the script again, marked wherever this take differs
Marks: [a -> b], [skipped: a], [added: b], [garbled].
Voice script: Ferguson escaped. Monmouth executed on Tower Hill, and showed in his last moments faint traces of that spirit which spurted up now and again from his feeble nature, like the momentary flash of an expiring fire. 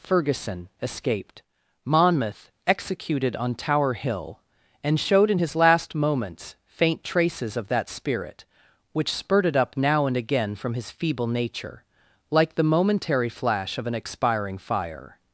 Ferguson escaped. Monmouth executed on Tower Hill, and showed in his last moments faint traces of that spirit which spurted up now and again from his feeble nature, like the momentary flash of an expiring fire.